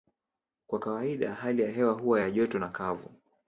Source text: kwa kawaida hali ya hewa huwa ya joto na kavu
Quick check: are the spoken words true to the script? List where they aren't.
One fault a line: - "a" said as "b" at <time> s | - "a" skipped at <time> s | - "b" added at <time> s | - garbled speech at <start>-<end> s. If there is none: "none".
none